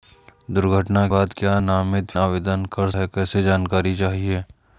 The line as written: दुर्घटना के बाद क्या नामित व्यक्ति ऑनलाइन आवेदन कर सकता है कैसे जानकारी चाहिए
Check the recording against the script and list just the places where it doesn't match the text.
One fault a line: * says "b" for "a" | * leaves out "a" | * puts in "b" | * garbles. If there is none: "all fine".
* leaves out "के"
* leaves out "व्यक्ति ऑनलाइन"
* leaves out "सकता"